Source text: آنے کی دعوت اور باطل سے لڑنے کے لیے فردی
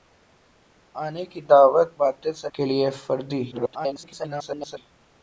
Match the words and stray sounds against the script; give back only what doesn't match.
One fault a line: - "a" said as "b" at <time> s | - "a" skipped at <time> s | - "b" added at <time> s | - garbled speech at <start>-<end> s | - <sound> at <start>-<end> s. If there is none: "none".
- "اور" skipped at 1.9 s
- "لڑنے" skipped at 2.5 s
- garbled speech at 3.5-4.8 s